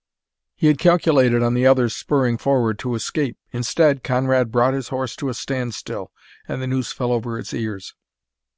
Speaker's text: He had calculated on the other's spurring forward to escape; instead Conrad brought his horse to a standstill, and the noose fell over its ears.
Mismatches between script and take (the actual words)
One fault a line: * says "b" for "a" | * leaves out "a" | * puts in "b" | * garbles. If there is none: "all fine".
all fine